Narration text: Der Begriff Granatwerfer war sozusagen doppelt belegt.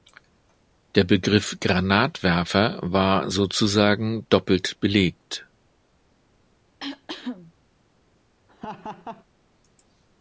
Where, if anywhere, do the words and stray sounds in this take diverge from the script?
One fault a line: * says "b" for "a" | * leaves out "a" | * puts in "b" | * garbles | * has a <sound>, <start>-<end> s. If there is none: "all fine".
* has a cough, 6.8-7.5 s
* has a laugh, 8.5-9.3 s